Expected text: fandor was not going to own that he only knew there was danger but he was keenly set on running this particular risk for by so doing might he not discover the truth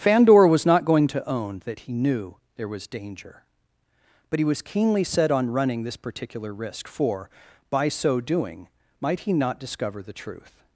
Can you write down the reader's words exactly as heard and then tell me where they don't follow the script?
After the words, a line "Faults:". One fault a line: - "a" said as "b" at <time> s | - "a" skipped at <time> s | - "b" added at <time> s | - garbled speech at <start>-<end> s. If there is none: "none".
fandor was not going to own that he knew there was danger but he was keenly set on running this particular risk for by so doing might he not discover the truth
Faults:
- "only" skipped at 1.9 s